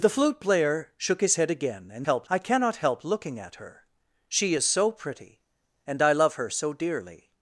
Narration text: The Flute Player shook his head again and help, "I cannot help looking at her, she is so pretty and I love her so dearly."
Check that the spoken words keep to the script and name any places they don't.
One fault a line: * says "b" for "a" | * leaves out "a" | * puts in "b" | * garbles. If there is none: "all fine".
all fine